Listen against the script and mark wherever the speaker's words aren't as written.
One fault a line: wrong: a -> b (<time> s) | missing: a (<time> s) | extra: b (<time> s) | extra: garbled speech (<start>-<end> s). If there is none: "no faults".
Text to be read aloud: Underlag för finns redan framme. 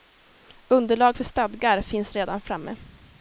extra: stadgar (1.2 s)